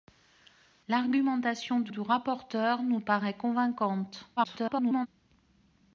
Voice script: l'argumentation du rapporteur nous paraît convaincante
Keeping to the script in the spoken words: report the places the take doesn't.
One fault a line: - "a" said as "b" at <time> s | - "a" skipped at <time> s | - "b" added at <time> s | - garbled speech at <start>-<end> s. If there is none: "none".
- "du" added at 1.9 s
- garbled speech at 4.4-5.1 s